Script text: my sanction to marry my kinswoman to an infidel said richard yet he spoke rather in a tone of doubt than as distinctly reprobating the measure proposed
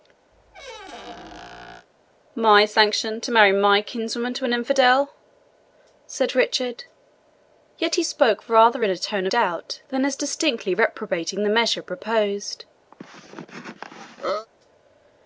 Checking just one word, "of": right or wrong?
wrong